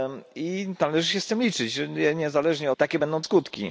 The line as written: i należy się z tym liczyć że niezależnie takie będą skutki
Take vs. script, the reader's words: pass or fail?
pass